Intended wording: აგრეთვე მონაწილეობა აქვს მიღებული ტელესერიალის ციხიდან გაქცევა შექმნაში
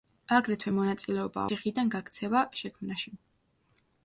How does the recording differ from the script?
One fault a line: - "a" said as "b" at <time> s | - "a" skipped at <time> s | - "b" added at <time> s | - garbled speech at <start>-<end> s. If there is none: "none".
- "აქვს მიღებული ტელესერიალის" skipped at 1.4 s